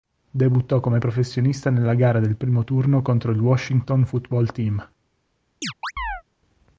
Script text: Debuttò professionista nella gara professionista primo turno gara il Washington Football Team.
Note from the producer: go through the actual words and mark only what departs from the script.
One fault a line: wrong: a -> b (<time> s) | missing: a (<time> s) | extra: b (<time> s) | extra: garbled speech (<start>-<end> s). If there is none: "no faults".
extra: come (0.8 s)
wrong: professionista -> del (2.2 s)
wrong: gara -> contro (3.0 s)